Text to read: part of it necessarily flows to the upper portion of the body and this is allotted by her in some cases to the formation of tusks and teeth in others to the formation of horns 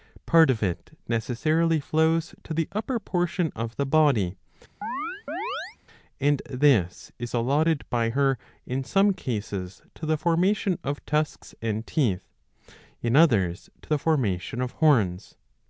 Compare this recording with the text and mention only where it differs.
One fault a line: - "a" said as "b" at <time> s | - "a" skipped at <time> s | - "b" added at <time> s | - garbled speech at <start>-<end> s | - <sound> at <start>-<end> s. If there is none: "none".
- chirp at 4.8-5.8 s